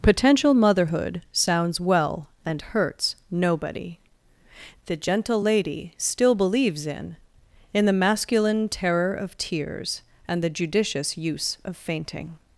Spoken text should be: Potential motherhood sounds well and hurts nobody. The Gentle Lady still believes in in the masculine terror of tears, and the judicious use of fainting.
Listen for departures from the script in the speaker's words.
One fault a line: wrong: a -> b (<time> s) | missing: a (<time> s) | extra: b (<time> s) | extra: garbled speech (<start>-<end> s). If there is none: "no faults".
no faults